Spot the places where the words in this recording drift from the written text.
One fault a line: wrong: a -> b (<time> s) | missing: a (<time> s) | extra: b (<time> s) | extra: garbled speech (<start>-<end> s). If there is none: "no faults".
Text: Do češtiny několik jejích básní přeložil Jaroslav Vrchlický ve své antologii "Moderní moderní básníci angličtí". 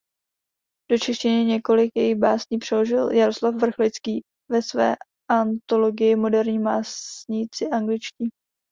missing: moderní (6.6 s)